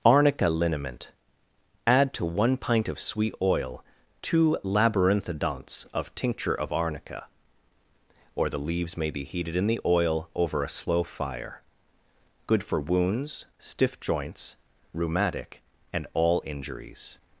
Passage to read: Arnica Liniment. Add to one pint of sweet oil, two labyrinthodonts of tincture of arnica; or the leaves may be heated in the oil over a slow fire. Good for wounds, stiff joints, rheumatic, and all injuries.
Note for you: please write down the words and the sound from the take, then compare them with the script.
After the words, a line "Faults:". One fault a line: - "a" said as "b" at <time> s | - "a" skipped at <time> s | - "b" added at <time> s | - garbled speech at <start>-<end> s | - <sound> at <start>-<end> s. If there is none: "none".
Arnica Liniment. Add to one pint of sweet oil, two labyrinthodonts of tincture of arnica; or the leaves may be heated in the oil over a slow fire. Good for wounds, stiff joints, rheumatic, and all injuries.
Faults:
none